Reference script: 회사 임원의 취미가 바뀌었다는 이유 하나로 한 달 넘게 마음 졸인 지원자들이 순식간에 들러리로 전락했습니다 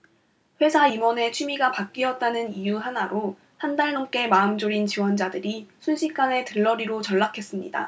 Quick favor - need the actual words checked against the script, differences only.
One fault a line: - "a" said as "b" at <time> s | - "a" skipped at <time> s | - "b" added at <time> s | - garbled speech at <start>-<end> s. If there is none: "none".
none